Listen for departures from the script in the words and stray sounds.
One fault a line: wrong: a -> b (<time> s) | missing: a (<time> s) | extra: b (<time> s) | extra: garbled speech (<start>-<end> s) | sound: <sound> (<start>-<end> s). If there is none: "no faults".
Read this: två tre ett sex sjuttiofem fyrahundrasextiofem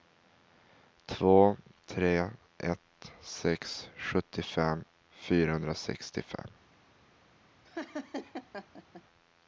sound: laugh (7.6-9.0 s)